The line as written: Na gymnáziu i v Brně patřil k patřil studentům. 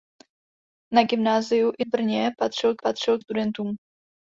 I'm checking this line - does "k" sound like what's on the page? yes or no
yes